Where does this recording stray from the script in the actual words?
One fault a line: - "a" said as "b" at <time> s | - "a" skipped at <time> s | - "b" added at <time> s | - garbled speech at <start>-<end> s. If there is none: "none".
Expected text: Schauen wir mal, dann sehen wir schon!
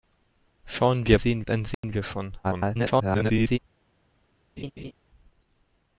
- "mal" said as "sehen" at 1.2 s
- garbled speech at 2.4-3.6 s